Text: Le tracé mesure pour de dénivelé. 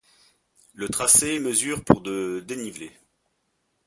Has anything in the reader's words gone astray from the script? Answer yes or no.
no